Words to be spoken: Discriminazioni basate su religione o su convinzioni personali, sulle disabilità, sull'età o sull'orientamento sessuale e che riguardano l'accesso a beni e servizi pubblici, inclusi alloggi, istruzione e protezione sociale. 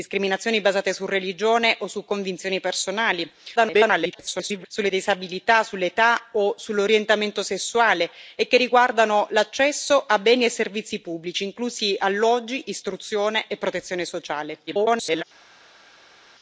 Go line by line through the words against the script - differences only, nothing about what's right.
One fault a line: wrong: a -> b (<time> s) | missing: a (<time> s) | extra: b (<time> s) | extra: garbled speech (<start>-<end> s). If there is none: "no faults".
extra: garbled speech (3.6-4.7 s)
extra: garbled speech (14.7-15.2 s)